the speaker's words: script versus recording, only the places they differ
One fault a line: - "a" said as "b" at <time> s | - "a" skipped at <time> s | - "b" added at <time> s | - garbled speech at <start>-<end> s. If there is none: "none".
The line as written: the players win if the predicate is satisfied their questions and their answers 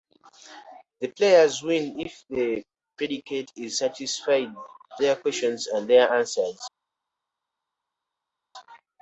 none